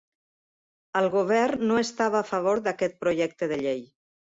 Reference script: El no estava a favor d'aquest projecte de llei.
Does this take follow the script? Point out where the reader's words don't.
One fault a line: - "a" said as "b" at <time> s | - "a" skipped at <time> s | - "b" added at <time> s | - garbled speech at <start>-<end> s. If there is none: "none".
- "govern" added at 1.2 s